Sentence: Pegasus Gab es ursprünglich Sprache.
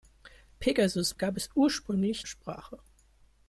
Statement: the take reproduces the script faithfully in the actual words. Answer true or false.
true